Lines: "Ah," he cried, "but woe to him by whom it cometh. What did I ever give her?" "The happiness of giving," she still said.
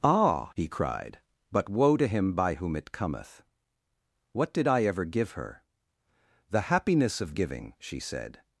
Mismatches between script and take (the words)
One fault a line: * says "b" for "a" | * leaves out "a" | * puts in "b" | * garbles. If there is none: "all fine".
* leaves out "still"